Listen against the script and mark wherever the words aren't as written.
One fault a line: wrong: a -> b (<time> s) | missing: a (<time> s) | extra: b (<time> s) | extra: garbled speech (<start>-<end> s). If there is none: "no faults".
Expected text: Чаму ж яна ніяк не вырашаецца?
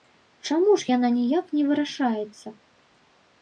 no faults